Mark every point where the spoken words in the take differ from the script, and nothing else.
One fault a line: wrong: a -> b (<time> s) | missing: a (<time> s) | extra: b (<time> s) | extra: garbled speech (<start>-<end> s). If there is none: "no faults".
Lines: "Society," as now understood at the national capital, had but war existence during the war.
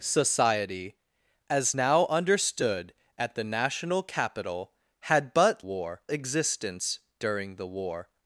no faults